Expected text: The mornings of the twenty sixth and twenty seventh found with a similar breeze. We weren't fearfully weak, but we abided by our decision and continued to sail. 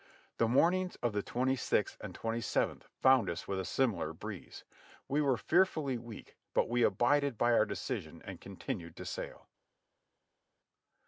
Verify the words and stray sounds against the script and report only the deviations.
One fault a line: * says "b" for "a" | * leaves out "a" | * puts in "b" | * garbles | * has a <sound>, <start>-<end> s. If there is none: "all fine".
* puts in "us"
* says "were" for "weren't"